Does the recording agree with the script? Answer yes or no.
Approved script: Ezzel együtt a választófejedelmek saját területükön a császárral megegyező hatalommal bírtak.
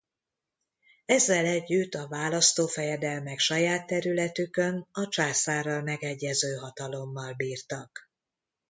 yes